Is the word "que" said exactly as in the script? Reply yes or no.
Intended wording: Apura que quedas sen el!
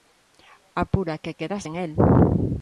yes